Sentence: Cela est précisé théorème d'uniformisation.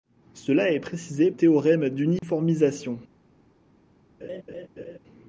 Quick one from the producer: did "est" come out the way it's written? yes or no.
yes